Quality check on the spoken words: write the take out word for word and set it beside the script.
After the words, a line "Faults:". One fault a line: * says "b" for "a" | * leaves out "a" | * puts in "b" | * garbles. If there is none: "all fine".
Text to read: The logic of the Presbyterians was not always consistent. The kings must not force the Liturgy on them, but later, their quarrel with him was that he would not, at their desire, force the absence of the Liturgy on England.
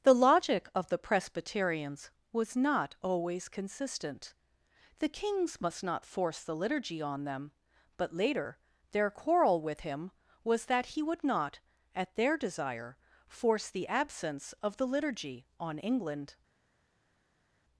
The logic of the Presbyterians was not always consistent. The kings must not force the Liturgy on them, but later, their quarrel with him was that he would not, at their desire, force the absence of the Liturgy on England.
Faults:
all fine